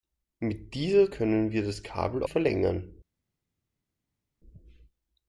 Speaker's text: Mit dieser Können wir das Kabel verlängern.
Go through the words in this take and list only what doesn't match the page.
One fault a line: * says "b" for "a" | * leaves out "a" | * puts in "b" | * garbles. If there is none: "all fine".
all fine